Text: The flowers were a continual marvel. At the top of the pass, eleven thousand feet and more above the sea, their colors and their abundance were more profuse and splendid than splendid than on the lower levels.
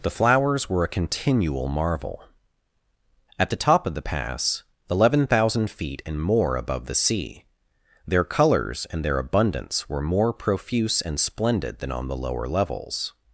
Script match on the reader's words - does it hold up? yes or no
no